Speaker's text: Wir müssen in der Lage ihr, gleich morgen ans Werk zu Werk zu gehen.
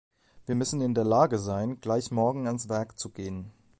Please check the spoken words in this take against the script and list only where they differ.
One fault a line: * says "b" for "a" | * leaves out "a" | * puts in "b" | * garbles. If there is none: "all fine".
* says "sein" for "ihr"
* leaves out "Werk zu"